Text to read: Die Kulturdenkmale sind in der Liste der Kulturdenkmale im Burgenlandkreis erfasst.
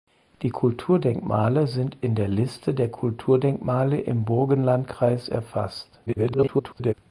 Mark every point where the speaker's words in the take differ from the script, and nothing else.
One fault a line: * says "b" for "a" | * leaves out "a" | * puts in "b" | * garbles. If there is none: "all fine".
* garbles